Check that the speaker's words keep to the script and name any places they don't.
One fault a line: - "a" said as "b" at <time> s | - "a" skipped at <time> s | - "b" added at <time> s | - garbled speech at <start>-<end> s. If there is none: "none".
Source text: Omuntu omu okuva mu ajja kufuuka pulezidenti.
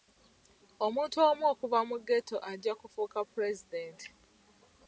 - "ghetto" added at 2.1 s